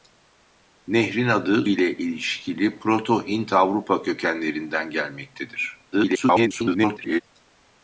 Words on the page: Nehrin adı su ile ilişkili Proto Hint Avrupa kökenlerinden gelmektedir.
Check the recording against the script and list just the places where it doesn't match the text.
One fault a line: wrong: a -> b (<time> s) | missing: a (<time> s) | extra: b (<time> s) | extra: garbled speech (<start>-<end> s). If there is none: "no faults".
missing: su (1.7 s)
extra: garbled speech (5.9-7.2 s)